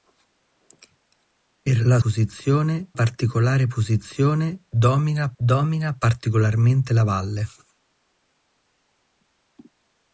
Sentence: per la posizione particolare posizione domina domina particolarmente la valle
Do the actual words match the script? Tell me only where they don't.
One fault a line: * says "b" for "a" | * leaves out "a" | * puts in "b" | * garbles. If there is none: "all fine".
all fine